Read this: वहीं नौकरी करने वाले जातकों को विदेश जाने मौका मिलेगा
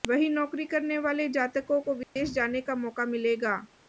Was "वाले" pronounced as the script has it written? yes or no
yes